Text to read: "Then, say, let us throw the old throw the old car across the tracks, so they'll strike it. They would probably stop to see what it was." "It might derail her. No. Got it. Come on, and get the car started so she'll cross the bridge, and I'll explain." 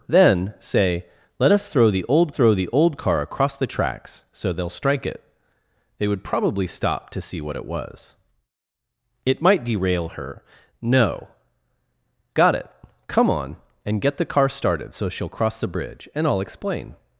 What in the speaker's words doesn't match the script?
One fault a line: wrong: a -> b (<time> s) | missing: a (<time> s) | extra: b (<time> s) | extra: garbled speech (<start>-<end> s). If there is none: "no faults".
no faults